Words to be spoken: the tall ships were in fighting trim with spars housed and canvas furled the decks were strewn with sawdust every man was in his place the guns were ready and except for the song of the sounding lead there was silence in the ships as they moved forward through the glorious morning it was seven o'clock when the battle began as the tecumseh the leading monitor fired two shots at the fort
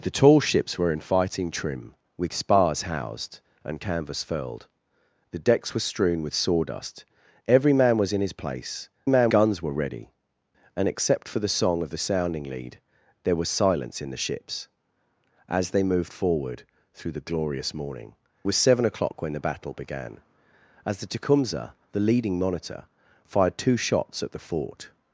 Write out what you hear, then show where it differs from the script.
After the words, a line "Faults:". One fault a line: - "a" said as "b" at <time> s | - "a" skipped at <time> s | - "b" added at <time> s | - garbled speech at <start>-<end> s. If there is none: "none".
the tall ships were in fighting trim with spars housed and canvas furled the decks were strewn with sawdust every man was in his place man guns were ready and except for the song of the sounding lead there was silence in the ships as they moved forward through the glorious morning was seven o'clock when the battle began as the tecumseh the leading monitor fired two shots at the fort
Faults:
- "the" said as "man" at 9.0 s
- "it" skipped at 18.1 s